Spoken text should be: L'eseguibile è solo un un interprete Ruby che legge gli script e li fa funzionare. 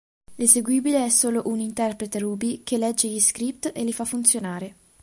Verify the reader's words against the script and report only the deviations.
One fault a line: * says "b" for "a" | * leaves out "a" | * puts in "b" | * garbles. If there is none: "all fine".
* leaves out "un"